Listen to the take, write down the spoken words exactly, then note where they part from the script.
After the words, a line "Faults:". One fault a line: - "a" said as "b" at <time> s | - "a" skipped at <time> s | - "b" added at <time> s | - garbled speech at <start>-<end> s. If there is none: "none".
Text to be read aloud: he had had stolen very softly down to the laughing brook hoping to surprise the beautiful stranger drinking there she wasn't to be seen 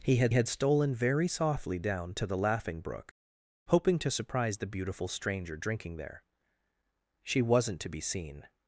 he had had stolen very softly down to the laughing brook hoping to surprise the beautiful stranger drinking there she wasn't to be seen
Faults:
none